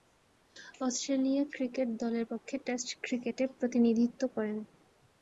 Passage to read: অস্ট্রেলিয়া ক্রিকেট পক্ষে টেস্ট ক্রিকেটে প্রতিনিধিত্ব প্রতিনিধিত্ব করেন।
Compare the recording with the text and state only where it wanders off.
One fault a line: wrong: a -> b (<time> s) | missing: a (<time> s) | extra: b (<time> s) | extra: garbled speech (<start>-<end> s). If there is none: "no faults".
extra: দলের (2.0 s)
missing: প্রতিনিধিত্ব (4.2 s)